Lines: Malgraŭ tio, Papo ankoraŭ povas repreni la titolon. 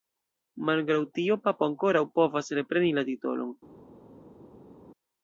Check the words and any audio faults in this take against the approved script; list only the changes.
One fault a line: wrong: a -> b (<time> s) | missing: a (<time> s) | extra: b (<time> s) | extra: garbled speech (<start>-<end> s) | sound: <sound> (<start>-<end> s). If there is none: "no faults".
no faults